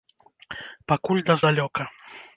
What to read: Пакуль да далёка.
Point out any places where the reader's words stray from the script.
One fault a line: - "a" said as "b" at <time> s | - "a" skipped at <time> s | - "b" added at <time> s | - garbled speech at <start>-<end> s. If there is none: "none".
none